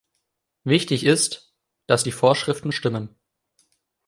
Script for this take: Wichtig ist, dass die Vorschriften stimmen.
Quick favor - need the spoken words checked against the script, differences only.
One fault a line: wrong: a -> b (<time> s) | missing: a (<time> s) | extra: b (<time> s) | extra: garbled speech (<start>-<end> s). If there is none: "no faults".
no faults